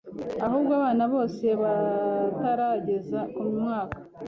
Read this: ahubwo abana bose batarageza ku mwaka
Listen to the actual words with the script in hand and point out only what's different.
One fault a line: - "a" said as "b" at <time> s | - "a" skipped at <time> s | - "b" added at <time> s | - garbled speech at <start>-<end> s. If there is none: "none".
none